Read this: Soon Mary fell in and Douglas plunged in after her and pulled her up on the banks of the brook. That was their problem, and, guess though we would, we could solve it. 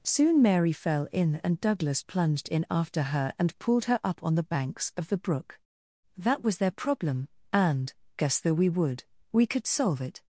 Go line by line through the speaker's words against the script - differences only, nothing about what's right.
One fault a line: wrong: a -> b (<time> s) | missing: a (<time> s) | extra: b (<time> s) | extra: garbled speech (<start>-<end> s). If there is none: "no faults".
no faults